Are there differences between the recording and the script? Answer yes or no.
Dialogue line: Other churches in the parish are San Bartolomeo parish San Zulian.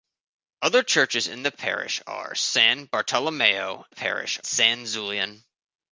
no